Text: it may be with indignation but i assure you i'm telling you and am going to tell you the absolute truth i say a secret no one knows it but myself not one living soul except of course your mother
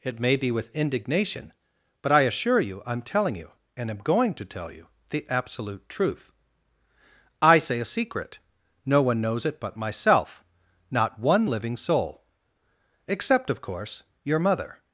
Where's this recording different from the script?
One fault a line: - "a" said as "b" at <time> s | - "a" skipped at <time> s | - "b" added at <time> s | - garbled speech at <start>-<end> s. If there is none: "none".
none